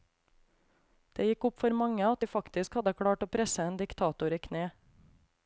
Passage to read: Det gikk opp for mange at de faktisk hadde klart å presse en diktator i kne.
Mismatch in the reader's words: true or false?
false